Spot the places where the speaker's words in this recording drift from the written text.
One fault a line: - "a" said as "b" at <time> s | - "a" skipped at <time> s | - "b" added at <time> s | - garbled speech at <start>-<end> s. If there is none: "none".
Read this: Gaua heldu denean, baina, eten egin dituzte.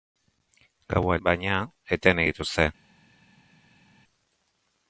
- "heldu denean" skipped at 1.2 s
- "egin" skipped at 2.2 s